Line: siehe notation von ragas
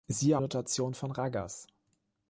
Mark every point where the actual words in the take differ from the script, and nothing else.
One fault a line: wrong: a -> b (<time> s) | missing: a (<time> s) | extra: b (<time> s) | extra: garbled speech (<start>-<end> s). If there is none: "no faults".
no faults